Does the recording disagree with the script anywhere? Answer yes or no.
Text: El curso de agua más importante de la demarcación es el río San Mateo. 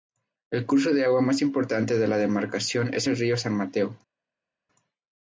no